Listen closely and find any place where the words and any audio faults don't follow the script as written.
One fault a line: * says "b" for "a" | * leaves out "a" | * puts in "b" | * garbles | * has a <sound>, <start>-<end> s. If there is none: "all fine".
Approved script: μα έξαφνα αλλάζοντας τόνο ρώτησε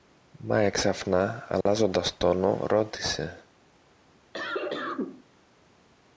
* has a dropout, 1.6-1.7 s
* has a cough, 4.3-5.2 s